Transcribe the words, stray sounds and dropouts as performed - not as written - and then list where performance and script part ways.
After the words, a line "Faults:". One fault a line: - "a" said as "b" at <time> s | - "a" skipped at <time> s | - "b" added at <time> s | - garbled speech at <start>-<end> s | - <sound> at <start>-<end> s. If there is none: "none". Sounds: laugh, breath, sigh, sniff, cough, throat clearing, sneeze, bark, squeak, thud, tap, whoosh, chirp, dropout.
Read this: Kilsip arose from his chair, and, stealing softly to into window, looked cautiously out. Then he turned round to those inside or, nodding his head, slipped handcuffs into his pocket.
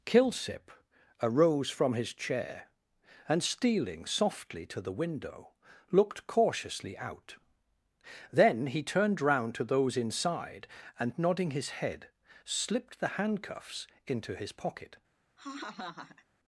Kilsip arose from his chair, and, stealing softly to the window, looked cautiously out. Then he turned round to those inside and, nodding his head, slipped the handcuffs into his pocket.
Faults:
- "into" said as "the" at 4.8 s
- "or" said as "and" at 11.0 s
- "the" added at 13.0 s
- laugh at 15.4-16.3 s